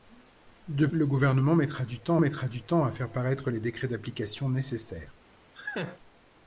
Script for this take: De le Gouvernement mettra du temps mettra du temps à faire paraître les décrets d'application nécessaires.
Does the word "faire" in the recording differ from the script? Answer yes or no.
no